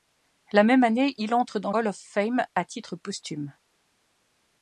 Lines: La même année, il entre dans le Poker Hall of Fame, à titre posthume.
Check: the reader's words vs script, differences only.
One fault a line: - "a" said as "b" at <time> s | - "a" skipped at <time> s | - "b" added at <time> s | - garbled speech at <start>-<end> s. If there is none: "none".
- "le Poker" skipped at 1.7 s